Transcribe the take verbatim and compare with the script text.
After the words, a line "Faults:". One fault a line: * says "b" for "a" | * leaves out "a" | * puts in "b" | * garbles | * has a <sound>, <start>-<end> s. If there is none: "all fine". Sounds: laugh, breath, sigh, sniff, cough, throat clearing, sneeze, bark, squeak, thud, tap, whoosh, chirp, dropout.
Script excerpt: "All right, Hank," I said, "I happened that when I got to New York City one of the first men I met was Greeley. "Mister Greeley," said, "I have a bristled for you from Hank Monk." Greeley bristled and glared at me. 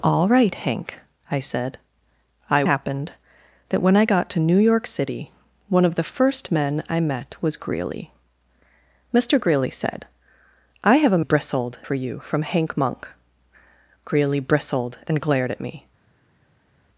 "All right, Hank," I said, "I happened that when I got to New York City one of the first men I met was Greeley. "Mister Greeley," said, "I have a bristled for you from Hank Monk." Greeley bristled and glared at me.
Faults:
all fine